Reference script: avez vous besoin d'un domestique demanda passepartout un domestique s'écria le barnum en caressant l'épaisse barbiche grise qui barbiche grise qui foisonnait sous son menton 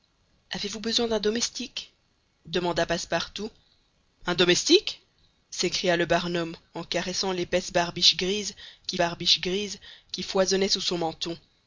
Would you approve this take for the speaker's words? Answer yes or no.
yes